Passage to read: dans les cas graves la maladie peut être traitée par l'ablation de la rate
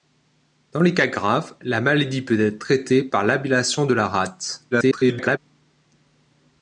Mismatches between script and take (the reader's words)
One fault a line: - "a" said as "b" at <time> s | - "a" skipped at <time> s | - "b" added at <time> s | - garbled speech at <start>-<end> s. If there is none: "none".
- garbled speech at 4.7-5.4 s